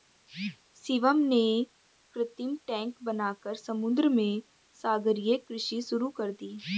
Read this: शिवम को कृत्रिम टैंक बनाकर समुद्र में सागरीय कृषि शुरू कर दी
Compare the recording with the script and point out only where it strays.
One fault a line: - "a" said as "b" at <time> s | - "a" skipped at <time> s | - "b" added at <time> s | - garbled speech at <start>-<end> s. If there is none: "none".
- "को" said as "ने" at 1.2 s